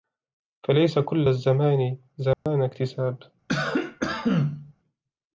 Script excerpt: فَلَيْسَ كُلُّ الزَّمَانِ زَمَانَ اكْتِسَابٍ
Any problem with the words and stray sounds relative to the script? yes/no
yes